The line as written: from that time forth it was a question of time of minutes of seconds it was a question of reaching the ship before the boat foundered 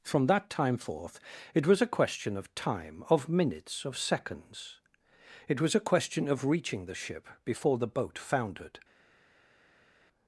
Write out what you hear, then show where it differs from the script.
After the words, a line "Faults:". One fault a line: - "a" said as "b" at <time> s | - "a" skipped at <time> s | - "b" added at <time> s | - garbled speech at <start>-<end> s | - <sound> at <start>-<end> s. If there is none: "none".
from that time forth it was a question of time of minutes of seconds it was a question of reaching the ship before the boat foundered
Faults:
none